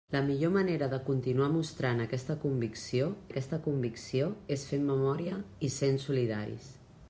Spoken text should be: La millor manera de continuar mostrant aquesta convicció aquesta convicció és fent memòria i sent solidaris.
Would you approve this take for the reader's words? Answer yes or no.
yes